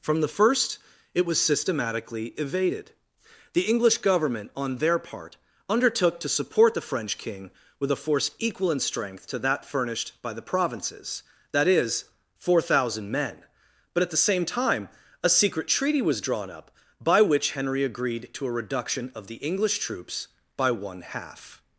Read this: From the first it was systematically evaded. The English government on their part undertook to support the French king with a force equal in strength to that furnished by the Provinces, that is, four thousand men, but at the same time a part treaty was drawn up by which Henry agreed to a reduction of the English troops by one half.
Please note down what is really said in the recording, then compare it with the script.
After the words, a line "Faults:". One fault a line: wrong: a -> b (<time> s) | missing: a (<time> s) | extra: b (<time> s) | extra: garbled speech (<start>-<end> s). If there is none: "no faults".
From the first it was systematically evaded. The English government on their part undertook to support the French king with a force equal in strength to that furnished by the Provinces, that is, four thousand men, but at the same time a secret treaty was drawn up by which Henry agreed to a reduction of the English troops by one half.
Faults:
wrong: part -> secret (15.3 s)